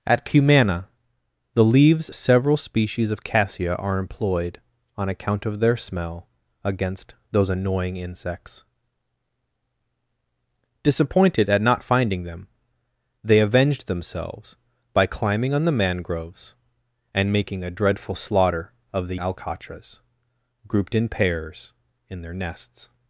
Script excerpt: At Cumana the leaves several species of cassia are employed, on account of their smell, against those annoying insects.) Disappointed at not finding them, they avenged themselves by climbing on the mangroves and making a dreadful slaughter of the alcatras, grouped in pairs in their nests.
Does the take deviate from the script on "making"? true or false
false